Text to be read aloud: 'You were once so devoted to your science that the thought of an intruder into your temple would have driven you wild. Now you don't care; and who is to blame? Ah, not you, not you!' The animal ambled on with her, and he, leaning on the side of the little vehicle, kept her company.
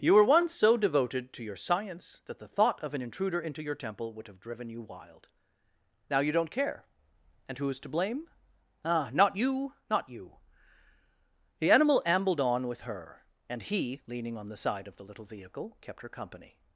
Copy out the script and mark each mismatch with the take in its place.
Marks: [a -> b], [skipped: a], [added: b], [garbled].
'You were once so devoted to your science that the thought of an intruder into your temple would have driven you wild. Now you don't care; and who is to blame? Ah, not you, not you!' The animal ambled on with her, and he, leaning on the side of the little vehicle, kept her company.